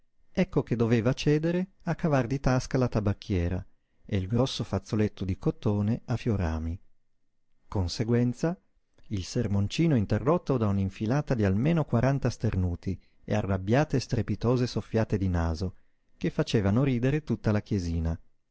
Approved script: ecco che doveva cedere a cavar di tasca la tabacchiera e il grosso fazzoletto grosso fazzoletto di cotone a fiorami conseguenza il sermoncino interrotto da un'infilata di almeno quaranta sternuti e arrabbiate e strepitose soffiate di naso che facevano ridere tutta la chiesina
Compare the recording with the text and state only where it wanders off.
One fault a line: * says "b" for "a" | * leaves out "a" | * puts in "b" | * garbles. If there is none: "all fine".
* leaves out "grosso fazzoletto"